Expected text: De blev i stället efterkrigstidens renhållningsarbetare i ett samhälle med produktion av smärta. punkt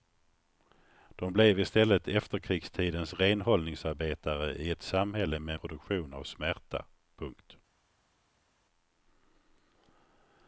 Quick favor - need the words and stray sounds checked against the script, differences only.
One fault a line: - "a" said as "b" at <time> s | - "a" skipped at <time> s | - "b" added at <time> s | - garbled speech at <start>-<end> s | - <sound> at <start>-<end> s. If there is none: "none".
none